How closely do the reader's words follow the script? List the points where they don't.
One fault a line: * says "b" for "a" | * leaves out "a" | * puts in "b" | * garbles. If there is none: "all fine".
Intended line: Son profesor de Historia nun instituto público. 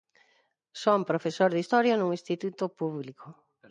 all fine